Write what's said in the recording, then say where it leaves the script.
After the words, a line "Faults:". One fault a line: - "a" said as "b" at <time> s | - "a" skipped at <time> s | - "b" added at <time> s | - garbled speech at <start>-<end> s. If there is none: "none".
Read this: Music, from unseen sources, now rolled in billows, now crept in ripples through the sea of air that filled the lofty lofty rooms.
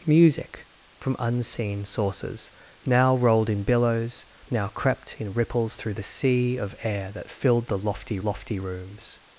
Music, from unseen sources, now rolled in billows, now crept in ripples through the sea of air that filled the lofty lofty rooms.
Faults:
none